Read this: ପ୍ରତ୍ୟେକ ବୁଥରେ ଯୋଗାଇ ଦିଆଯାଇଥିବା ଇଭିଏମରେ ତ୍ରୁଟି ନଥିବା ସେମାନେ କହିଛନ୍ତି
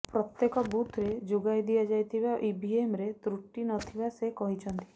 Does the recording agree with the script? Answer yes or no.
no